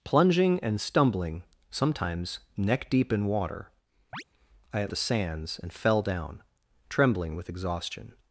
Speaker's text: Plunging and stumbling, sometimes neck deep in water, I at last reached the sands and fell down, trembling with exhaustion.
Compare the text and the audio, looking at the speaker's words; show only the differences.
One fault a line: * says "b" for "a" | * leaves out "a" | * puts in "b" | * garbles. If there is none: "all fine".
* leaves out "last reached"